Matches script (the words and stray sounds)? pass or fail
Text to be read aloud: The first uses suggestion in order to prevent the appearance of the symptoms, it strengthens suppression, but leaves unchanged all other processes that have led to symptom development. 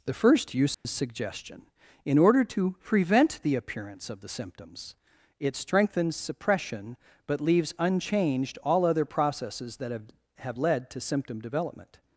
fail